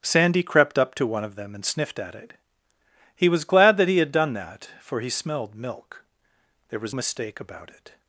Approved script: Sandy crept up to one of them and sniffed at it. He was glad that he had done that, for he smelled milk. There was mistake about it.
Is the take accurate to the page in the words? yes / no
yes